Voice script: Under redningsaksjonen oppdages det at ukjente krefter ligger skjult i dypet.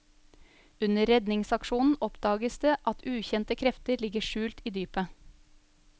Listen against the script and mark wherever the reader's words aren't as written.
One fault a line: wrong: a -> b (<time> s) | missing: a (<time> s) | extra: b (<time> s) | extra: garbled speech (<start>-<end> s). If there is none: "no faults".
no faults